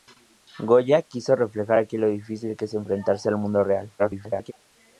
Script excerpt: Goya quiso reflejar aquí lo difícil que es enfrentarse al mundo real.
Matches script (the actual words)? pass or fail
fail